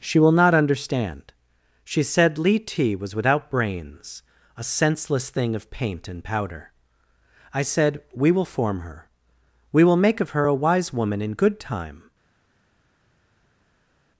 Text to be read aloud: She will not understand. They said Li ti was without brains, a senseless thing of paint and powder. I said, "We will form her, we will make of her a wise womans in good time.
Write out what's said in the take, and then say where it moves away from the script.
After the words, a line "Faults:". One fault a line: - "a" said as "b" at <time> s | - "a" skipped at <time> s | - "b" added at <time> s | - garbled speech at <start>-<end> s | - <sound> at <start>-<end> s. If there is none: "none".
She will not understand. She said Li ti was without brains, a senseless thing of paint and powder. I said, "We will form her, we will make of her a wise woman in good time.
Faults:
- "They" said as "She" at 1.9 s
- "womans" said as "woman" at 10.9 s